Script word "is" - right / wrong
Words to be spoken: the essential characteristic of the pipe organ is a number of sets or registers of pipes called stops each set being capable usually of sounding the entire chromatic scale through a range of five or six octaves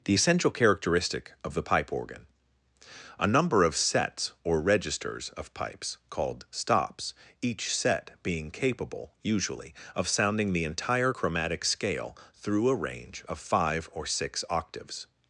wrong